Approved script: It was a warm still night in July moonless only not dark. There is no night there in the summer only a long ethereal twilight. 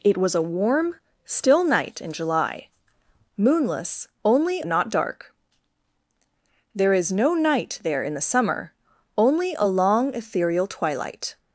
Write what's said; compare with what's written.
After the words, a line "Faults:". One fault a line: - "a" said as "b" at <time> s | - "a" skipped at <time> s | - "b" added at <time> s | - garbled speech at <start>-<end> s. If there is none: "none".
It was a warm still night in July moonless only not dark. There is no night there in the summer only a long ethereal twilight.
Faults:
none